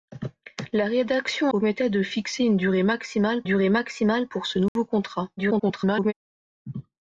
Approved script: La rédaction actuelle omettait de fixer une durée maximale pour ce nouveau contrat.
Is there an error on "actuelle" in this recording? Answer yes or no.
yes